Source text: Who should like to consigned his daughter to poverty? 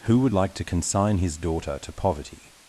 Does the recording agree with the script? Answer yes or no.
no